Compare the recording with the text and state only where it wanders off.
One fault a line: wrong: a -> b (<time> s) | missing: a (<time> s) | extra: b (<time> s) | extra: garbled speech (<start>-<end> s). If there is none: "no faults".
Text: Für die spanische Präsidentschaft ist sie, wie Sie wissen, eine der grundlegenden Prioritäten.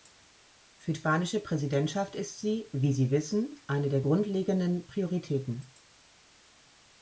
missing: die (0.9 s)